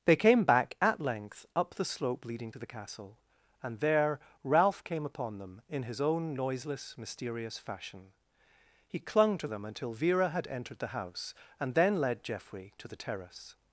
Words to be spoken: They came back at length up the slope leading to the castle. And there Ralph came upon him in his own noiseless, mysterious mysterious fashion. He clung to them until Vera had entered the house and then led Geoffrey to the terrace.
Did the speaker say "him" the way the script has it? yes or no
no